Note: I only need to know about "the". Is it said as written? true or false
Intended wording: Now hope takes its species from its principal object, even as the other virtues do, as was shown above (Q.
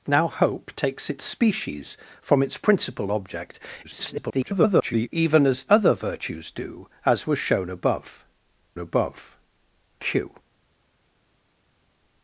false